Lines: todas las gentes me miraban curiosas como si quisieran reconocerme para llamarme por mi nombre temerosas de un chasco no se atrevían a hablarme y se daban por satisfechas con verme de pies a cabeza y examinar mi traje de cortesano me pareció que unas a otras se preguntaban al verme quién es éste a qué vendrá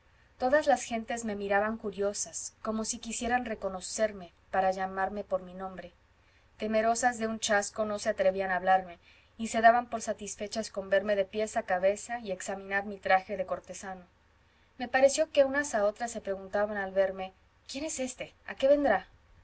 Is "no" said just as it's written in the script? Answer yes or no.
yes